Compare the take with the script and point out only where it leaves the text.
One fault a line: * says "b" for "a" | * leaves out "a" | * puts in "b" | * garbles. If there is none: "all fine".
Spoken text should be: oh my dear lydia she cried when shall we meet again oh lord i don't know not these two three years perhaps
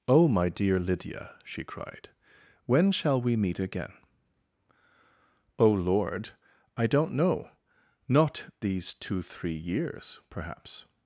all fine